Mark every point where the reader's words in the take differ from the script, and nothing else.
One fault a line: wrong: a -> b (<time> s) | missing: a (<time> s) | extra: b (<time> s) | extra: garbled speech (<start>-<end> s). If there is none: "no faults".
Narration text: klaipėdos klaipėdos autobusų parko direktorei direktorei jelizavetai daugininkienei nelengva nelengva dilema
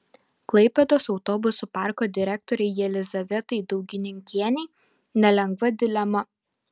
missing: klaipėdos (1.0 s)
missing: direktorei (2.7 s)
missing: nelengva (5.7 s)